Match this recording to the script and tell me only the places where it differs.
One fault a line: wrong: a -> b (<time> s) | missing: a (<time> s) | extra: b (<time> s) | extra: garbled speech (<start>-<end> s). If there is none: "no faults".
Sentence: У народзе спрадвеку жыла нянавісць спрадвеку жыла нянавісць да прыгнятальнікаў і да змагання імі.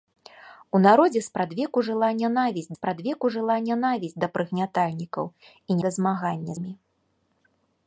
no faults